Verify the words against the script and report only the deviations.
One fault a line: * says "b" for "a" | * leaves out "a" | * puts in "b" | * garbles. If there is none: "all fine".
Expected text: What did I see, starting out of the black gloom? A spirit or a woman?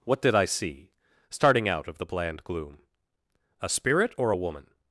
* says "bland" for "black"